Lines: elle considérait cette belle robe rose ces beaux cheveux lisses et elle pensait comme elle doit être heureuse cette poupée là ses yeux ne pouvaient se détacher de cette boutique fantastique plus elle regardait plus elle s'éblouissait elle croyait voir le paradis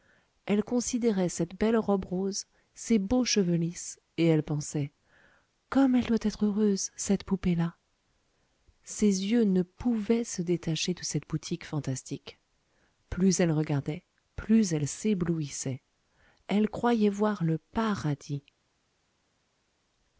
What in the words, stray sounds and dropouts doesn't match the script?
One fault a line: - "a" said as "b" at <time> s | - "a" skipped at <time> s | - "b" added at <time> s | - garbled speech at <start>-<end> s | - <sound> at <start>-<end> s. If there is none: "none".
none